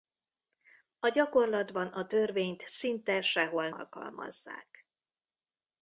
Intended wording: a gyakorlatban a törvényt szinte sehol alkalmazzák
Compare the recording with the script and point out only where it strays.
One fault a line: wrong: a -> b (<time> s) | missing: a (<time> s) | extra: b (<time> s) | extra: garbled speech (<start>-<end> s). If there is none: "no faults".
no faults